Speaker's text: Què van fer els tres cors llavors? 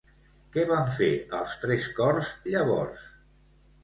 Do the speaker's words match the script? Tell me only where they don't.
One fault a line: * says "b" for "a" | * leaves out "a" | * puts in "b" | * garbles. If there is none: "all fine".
all fine